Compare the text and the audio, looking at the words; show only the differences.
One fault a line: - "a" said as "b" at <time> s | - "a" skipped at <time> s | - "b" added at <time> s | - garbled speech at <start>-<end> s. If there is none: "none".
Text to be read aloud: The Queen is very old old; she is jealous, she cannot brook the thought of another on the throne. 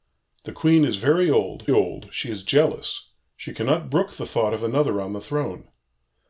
none